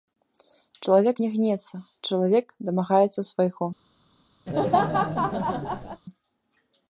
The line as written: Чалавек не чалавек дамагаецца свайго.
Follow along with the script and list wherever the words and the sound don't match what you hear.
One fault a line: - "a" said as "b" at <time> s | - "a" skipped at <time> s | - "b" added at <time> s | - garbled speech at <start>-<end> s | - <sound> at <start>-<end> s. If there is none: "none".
- "гнецца" added at 1.4 s
- laugh at 4.5-6.0 s